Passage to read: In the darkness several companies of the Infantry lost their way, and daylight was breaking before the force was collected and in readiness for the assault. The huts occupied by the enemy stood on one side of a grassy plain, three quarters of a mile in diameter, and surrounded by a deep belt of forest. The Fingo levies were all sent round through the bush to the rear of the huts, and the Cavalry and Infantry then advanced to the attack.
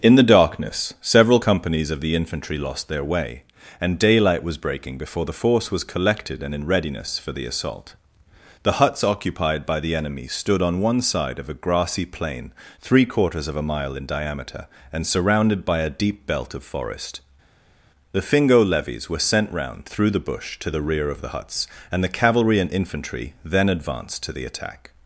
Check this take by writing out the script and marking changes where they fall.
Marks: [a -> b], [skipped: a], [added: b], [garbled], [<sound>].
In the darkness several companies of the Infantry lost their way, and daylight was breaking before the force was collected and in readiness for the assault. The huts occupied by the enemy stood on one side of a grassy plain, three quarters of a mile in diameter, and surrounded by a deep belt of forest. The Fingo levies were [skipped: all] sent round through the bush to the rear of the huts, and the Cavalry and Infantry then advanced to the attack.